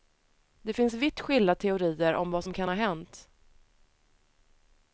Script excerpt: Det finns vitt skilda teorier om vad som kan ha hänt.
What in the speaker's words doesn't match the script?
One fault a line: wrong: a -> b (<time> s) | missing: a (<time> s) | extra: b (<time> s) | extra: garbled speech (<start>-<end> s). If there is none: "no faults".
no faults